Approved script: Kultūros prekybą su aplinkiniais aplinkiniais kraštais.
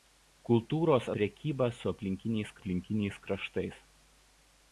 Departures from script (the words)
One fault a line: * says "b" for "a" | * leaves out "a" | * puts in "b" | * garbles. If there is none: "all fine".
all fine